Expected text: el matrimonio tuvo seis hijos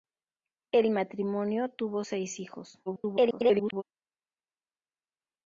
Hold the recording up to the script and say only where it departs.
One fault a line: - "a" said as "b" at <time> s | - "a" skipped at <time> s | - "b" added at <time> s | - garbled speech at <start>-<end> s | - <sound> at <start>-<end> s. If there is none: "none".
- garbled speech at 2.9-3.8 s